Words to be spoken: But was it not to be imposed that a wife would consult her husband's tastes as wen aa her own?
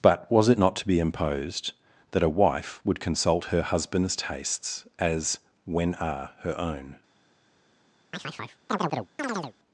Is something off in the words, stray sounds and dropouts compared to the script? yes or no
yes